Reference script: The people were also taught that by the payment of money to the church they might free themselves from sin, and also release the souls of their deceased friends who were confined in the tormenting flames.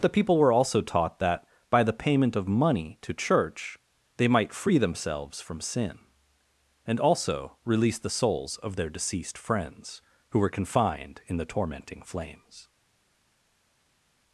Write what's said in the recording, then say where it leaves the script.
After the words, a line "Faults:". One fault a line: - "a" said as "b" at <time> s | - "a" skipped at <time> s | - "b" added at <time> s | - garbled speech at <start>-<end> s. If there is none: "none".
The people were also taught that by the payment of money to church they might free themselves from sin, and also release the souls of their deceased friends who were confined in the tormenting flames.
Faults:
- "the" skipped at 3.1 s